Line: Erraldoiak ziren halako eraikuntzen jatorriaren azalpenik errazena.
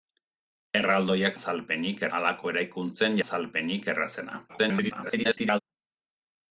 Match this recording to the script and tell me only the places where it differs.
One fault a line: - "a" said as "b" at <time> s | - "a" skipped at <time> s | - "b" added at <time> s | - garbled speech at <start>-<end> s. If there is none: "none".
- "ziren" said as "azalpenik" at 1.3 s
- "jatorriaren" skipped at 3.2 s
- garbled speech at 4.5-5.6 s